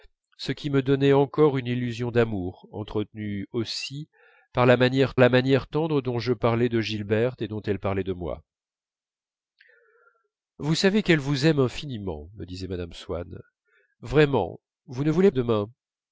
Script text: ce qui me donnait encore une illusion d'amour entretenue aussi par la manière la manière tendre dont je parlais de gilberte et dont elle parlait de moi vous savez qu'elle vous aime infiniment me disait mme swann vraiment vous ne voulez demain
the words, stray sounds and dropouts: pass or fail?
pass